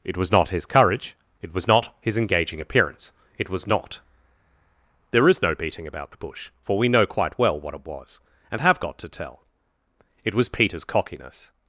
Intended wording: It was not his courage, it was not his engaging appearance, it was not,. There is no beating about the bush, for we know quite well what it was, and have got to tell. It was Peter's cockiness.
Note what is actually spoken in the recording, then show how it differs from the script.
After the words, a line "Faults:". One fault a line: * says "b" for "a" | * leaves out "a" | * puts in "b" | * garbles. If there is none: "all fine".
It was not his courage, it was not his engaging appearance, it was not,. There is no beating about the bush, for we know quite well what it was, and have got to tell. It was Peter's cockiness.
Faults:
all fine